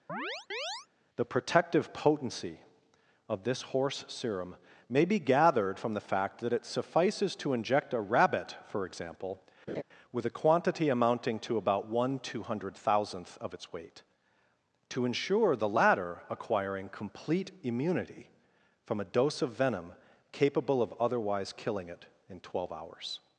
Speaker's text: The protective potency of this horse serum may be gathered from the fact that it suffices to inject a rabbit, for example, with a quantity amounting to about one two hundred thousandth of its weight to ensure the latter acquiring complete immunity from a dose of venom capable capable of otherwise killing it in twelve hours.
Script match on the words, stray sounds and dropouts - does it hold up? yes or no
no